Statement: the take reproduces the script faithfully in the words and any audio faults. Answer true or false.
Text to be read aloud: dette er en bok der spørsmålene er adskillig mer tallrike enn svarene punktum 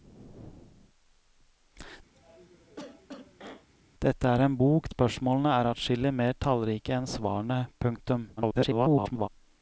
false